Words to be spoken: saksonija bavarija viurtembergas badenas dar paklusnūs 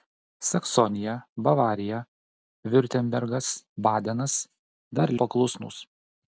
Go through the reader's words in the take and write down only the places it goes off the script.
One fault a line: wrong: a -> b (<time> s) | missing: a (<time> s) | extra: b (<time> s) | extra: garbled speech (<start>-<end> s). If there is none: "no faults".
no faults